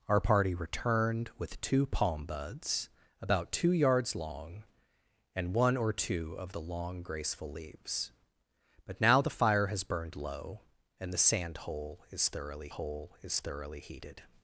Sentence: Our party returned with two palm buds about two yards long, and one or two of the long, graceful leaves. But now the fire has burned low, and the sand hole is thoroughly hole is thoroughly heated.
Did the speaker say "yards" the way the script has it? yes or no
yes